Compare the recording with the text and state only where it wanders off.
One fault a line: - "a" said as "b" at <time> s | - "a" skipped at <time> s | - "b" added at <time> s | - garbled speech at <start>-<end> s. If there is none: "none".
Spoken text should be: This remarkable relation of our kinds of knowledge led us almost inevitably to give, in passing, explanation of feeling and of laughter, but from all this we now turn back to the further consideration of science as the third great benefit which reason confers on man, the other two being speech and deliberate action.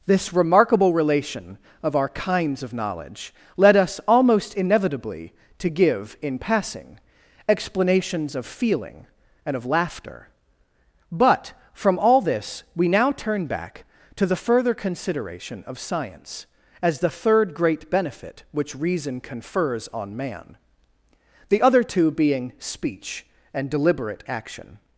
- "explanation" said as "explanations" at 7.5 s